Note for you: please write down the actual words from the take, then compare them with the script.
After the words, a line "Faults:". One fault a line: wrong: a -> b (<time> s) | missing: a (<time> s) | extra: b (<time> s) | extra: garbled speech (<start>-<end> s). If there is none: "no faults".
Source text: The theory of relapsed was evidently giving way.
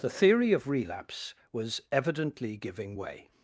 The theory of relapse was evidently giving way.
Faults:
wrong: relapsed -> relapse (0.7 s)